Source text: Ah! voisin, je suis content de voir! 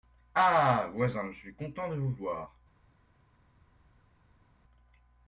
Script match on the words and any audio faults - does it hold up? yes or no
no